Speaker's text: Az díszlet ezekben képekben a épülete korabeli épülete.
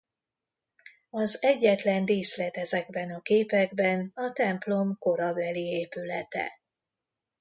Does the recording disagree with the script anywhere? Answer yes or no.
yes